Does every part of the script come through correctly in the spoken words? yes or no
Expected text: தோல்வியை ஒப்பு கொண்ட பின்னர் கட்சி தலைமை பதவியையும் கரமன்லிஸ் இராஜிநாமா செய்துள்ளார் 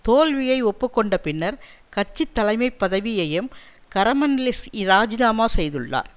yes